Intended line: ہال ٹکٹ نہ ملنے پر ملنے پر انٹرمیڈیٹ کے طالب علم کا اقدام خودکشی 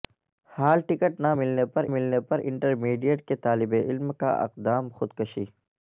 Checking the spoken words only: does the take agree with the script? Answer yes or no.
yes